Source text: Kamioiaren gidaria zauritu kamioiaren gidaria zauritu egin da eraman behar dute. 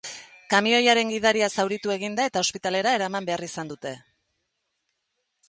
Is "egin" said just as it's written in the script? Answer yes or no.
no